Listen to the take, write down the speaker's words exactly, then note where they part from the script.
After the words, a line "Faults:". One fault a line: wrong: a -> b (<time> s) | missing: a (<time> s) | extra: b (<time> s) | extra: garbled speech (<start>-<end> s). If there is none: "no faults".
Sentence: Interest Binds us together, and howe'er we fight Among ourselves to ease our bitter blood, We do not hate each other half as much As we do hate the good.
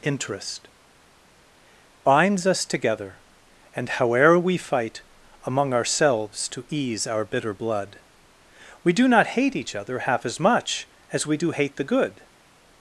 Interest Binds us together, and howe'er we fight Among ourselves to ease our bitter blood, We do not hate each other half as much As we do hate the good.
Faults:
no faults